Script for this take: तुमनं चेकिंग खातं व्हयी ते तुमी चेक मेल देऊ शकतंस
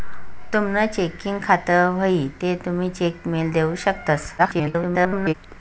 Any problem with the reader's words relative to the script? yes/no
yes